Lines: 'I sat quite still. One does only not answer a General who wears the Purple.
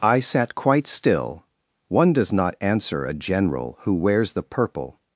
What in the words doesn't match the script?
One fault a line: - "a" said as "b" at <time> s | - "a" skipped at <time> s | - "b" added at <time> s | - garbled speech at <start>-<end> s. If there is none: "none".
- "only" skipped at 2.3 s